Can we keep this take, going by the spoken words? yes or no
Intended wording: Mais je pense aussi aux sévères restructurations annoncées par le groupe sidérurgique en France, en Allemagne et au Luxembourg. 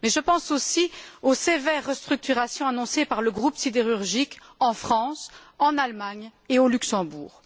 yes